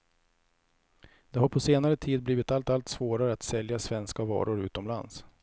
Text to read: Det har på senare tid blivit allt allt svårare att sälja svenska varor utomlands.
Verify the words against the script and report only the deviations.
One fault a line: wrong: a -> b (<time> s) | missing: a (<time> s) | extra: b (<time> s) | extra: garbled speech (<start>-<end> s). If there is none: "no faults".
no faults